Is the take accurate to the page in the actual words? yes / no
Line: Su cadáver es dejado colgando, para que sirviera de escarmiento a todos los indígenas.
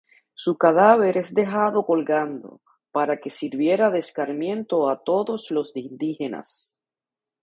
yes